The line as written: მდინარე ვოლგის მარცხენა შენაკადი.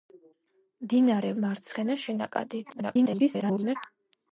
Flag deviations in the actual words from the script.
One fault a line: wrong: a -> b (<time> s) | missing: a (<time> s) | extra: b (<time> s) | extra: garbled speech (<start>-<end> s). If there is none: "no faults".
missing: ვოლგის (1.3 s)
extra: garbled speech (2.7-3.8 s)